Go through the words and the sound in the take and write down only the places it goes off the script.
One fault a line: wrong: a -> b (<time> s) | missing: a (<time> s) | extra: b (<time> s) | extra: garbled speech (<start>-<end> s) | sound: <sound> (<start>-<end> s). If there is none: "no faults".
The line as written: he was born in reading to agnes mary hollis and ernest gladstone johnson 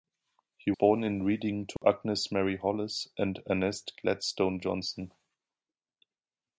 missing: was (0.7 s)
sound: dropout (1.8-1.8 s)